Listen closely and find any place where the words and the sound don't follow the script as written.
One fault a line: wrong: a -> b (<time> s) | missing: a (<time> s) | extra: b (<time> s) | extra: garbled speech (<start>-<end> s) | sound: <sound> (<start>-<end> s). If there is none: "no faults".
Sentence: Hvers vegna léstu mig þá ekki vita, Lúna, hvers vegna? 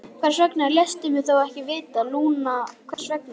sound: dropout (2.9-3.0 s)